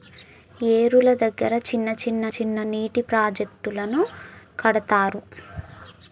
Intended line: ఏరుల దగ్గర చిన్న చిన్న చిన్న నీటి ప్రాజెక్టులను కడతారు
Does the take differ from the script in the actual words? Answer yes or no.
no